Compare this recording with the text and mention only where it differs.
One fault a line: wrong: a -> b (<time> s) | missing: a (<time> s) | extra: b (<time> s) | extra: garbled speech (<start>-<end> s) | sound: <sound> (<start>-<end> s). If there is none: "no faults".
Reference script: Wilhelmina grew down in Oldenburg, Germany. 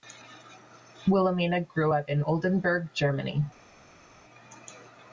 wrong: down -> up (1.9 s)